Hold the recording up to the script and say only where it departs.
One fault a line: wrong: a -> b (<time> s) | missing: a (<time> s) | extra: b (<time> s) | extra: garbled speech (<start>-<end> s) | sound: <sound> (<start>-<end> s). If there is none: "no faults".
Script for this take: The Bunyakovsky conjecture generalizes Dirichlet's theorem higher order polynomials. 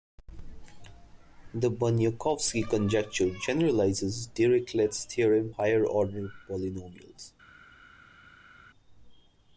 no faults